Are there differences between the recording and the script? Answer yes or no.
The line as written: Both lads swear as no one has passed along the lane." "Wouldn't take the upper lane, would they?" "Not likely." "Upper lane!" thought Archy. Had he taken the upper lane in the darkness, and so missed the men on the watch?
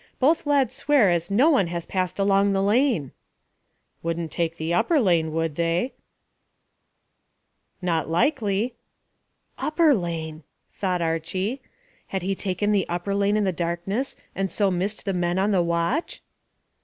no